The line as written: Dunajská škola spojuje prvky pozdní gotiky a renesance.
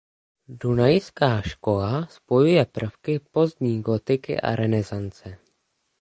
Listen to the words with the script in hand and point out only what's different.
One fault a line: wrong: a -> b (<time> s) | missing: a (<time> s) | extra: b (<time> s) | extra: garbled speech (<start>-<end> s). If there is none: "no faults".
no faults